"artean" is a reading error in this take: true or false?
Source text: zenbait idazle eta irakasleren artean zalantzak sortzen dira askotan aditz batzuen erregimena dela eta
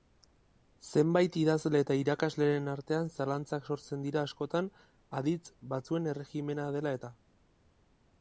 false